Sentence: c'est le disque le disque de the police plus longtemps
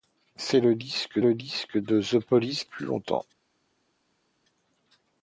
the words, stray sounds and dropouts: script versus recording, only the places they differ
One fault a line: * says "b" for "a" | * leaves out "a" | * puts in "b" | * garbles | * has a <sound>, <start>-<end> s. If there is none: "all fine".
all fine